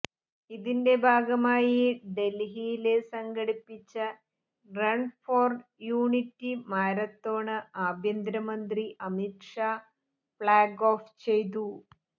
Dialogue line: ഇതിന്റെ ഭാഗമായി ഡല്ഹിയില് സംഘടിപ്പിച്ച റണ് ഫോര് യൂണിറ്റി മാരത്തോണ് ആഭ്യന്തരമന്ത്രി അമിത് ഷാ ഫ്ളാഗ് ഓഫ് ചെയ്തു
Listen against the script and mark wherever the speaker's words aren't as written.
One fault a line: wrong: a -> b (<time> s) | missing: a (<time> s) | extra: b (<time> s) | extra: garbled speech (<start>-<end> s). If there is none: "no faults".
no faults